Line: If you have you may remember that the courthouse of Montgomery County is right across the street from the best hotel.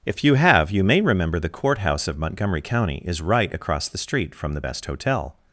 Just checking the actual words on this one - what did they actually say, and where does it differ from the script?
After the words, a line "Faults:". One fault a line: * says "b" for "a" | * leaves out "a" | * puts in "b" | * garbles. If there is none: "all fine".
If you have you may remember the courthouse of Montgomery County is right across the street from the best hotel.
Faults:
* leaves out "that"